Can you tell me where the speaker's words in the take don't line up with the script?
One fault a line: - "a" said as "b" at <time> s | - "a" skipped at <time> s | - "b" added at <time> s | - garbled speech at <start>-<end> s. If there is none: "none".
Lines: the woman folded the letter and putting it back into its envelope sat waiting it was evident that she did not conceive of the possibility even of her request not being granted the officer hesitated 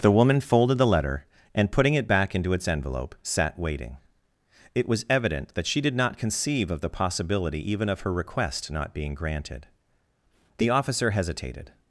none